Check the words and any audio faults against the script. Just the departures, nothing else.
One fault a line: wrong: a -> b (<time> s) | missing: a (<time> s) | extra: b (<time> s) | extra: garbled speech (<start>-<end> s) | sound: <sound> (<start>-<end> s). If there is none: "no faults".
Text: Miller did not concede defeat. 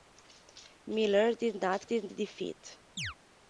wrong: concede -> did (1.8 s)
sound: chirp (3.0-3.2 s)